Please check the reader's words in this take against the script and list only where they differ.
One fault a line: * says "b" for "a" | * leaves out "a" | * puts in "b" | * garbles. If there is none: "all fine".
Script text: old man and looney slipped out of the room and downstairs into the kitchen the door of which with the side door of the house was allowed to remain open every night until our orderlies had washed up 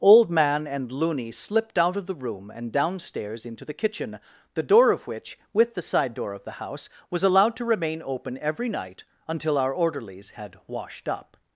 all fine